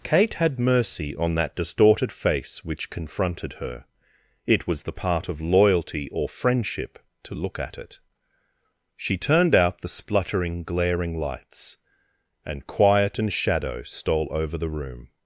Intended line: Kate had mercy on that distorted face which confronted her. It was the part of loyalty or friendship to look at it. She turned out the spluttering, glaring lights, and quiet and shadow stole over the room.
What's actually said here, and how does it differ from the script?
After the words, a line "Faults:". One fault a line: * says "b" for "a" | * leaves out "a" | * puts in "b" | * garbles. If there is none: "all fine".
Kate had mercy on that distorted face which confronted her. It was the part of loyalty or friendship to look at it. She turned out the spluttering, glaring lights, and quiet and shadow stole over the room.
Faults:
all fine